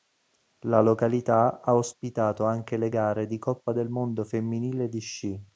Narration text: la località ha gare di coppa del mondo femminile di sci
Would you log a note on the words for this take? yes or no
yes